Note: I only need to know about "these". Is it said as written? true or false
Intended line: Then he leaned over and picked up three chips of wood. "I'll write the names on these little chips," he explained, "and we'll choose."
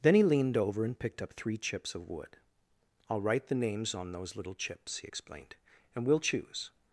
false